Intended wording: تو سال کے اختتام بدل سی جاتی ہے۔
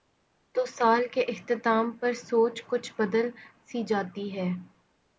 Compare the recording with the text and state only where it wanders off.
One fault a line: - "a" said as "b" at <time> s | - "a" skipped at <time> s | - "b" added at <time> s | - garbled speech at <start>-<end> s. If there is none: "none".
- "پر سوچ کچھ" added at 1.9 s